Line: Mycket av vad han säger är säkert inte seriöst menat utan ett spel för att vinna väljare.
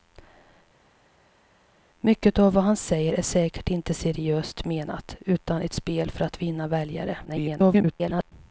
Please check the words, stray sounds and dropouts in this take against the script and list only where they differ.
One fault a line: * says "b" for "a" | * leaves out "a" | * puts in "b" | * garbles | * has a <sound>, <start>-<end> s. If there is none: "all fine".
* garbles